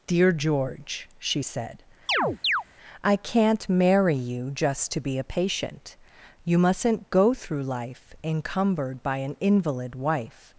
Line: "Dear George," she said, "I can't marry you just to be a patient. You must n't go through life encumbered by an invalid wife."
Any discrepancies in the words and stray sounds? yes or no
yes